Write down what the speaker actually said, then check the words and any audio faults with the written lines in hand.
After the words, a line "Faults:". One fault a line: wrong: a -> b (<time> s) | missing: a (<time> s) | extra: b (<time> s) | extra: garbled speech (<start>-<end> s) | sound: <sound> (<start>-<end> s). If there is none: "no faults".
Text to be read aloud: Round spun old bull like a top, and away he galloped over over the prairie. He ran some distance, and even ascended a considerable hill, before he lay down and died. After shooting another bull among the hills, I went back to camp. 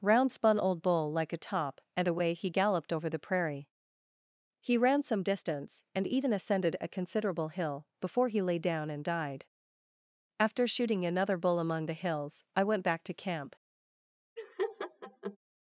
Round spun old bull like a top, and away he galloped over the prairie. He ran some distance, and even ascended a considerable hill, before he lay down and died. After shooting another bull among the hills, I went back to camp.
Faults:
missing: over (3.1 s)
sound: laugh (14.4-15.4 s)